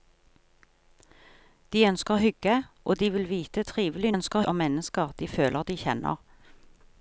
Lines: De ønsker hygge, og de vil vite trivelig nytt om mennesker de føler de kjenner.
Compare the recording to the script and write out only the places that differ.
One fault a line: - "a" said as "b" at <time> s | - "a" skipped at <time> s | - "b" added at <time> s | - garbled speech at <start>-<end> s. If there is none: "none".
- "nytt" said as "ønsker" at 4.1 s